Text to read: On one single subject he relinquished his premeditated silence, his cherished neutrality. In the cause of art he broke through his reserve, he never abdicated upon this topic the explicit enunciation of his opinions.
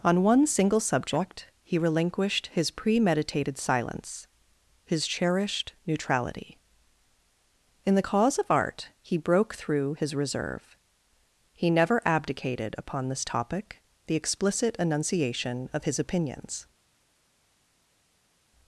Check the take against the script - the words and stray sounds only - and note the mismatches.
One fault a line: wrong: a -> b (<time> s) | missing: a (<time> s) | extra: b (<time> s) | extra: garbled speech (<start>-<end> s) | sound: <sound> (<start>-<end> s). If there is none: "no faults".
no faults